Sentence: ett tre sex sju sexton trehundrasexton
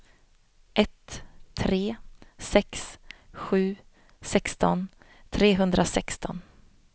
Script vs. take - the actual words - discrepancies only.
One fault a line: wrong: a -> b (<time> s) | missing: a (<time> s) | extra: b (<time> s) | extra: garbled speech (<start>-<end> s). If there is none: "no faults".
no faults